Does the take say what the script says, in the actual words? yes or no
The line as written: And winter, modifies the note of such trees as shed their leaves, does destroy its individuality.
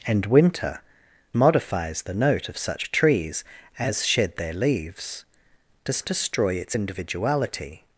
yes